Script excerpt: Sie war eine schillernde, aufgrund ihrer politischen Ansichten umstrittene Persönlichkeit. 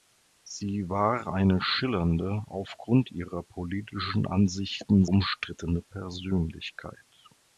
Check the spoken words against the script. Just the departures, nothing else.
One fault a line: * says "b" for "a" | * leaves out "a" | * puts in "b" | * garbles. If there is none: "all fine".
all fine